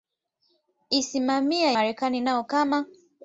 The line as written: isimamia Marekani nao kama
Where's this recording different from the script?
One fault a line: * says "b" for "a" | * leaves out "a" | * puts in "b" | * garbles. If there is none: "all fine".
all fine